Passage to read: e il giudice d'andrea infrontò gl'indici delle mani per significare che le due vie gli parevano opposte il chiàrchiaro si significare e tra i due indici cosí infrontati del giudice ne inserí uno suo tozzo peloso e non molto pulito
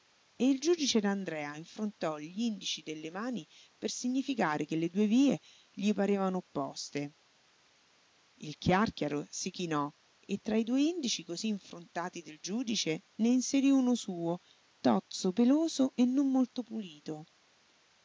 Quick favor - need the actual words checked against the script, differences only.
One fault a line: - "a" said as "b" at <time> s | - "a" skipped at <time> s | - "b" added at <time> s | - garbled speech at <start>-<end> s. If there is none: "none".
- "significare" said as "chinò" at 9.5 s